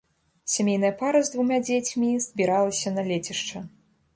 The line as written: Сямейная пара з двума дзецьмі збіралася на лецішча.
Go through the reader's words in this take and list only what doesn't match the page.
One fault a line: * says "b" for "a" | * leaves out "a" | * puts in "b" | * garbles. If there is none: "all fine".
all fine